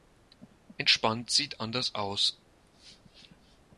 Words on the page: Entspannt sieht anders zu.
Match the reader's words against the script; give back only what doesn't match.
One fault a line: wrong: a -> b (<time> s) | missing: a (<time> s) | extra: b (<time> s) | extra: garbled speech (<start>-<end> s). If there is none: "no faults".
wrong: zu -> aus (1.9 s)